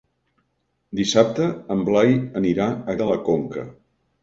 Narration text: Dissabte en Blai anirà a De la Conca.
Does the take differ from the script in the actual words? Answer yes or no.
no